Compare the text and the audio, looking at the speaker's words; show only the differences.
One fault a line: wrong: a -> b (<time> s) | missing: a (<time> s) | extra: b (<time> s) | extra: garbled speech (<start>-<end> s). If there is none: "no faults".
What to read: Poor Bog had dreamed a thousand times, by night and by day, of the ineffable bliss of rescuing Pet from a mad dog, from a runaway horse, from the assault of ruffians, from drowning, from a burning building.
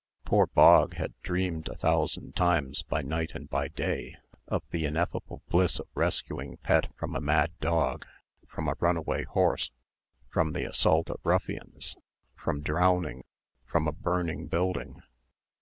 no faults